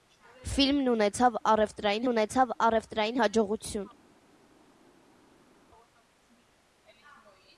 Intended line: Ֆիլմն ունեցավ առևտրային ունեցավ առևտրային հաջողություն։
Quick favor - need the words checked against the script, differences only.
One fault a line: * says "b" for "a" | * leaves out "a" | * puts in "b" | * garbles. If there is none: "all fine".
all fine